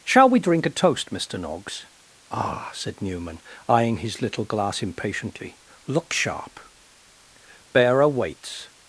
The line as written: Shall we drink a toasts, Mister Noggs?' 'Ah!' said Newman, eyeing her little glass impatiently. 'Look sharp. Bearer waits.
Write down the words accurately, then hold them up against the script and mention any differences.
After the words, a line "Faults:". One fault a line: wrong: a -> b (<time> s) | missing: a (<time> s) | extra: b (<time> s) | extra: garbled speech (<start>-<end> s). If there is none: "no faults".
Shall we drink a toast, Mister Noggs?' 'Ah!' said Newman, eyeing his little glass impatiently. 'Look sharp. Bearer waits.
Faults:
wrong: toasts -> toast (0.7 s)
wrong: her -> his (4.0 s)